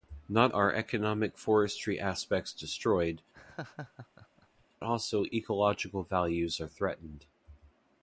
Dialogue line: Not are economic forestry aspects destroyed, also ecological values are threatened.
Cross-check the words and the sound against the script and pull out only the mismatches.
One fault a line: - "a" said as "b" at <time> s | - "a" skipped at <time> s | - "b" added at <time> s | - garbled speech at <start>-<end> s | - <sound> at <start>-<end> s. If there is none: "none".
- laugh at 3.3-4.7 s